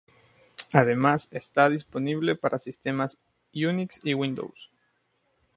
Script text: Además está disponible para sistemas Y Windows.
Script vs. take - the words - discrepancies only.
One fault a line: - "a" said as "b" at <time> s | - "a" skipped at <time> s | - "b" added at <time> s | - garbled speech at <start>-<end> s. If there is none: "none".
- "Unix" added at 3.5 s